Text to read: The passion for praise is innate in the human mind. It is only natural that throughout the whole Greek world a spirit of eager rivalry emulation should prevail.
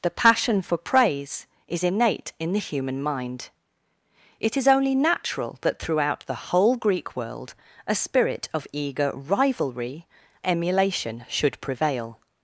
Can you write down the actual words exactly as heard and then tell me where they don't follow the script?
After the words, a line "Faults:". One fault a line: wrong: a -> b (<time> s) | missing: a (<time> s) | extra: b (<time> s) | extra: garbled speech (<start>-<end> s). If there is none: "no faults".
The passion for praise is innate in the human mind. It is only natural that throughout the whole Greek world a spirit of eager rivalry emulation should prevail.
Faults:
no faults